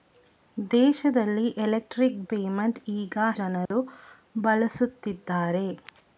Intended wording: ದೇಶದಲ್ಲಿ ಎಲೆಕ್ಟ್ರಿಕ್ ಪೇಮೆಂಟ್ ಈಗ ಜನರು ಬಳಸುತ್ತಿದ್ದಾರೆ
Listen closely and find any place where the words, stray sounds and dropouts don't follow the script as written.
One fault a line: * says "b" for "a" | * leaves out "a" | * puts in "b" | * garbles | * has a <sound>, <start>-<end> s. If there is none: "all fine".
* has a dropout, 3.7-3.7 s